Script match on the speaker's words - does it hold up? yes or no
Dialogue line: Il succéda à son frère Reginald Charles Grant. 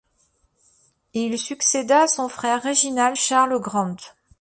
yes